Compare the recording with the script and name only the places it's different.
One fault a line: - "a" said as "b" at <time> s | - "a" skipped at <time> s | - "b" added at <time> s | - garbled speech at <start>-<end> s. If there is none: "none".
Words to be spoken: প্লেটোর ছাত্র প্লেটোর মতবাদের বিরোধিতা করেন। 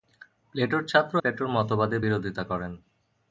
none